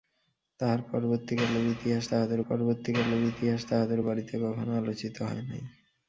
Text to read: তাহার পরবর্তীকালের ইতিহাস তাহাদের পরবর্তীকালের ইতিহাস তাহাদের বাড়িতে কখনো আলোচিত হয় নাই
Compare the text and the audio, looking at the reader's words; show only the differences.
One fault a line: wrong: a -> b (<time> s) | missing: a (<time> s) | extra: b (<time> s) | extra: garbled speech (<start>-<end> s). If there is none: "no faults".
no faults